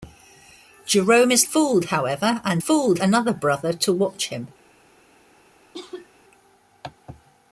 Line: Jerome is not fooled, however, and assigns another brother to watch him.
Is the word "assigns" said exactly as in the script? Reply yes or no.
no